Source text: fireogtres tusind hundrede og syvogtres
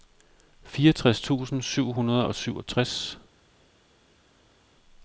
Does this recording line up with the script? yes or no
no